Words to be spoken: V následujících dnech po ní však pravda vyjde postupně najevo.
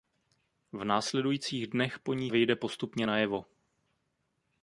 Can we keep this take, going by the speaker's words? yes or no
no